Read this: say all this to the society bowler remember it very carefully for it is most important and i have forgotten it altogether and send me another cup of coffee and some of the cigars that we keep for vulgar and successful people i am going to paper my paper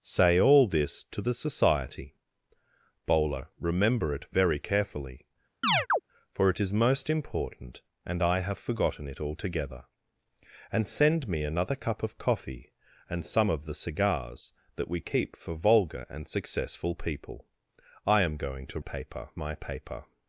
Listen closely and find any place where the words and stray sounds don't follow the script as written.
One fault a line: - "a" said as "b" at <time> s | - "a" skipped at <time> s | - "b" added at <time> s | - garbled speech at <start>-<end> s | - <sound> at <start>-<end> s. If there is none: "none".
- chirp at 5.6-6.0 s